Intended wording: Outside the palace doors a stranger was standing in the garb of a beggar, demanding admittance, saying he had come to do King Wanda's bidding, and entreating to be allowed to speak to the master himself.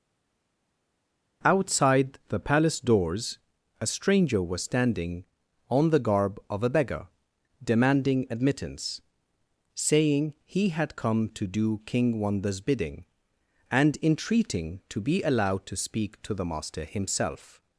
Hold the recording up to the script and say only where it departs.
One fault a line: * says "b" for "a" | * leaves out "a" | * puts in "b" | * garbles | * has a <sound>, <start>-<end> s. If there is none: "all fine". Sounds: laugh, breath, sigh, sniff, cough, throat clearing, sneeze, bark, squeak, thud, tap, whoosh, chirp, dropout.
* says "on" for "in"